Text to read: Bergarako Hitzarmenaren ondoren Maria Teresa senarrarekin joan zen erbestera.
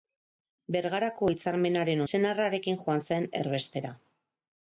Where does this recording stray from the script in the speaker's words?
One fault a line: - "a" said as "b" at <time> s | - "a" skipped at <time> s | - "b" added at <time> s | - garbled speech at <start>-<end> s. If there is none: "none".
- "ondoren Maria Teresa" skipped at 2.0 s